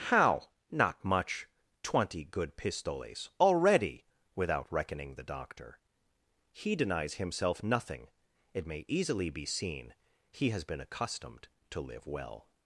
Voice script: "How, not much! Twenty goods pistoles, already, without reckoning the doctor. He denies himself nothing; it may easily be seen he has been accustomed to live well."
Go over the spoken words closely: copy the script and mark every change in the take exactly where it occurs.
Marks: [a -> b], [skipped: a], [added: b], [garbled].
"How, not much! Twenty [goods -> good] pistoles, already, without reckoning the doctor. He denies himself nothing; it may easily be seen he has been accustomed to live well."